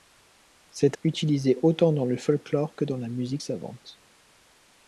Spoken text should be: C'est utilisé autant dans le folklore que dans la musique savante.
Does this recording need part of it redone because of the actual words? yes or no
no